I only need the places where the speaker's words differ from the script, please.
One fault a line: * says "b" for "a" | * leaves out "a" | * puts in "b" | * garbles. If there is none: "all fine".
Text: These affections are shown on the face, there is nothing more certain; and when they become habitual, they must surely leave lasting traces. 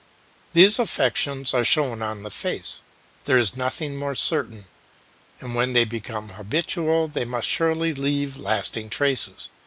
all fine